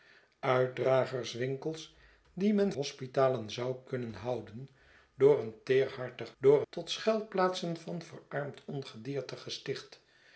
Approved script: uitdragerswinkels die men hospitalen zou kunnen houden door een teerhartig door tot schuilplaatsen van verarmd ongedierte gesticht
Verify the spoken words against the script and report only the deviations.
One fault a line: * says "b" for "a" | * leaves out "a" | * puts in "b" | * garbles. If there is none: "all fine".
all fine